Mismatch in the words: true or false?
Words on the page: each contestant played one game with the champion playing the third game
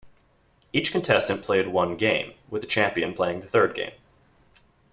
false